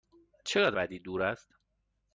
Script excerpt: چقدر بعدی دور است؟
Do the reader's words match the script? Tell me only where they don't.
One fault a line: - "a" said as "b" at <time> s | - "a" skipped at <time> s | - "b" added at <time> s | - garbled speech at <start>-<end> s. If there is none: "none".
none